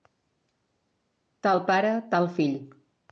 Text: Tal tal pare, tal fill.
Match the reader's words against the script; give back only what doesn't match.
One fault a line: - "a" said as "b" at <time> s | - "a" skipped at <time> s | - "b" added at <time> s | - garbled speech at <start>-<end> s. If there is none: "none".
- "tal" skipped at 1.6 s